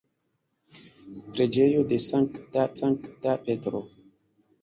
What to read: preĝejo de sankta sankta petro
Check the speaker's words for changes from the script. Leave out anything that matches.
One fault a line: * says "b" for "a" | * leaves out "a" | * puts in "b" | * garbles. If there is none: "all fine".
all fine